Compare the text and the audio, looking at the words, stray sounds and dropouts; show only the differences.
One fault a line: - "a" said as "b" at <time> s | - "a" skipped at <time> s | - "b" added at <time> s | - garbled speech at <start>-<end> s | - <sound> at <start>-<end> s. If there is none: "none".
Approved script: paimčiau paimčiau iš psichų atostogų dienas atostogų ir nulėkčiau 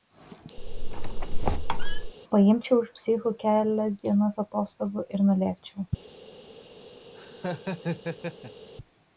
- squeak at 0.6-2.1 s
- "paimčiau" skipped at 2.8 s
- "atostogų" said as "kelias" at 3.4 s
- laugh at 7.1-8.7 s